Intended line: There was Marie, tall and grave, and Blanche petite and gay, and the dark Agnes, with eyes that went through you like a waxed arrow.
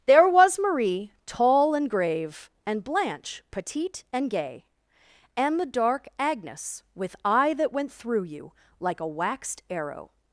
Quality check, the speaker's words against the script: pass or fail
fail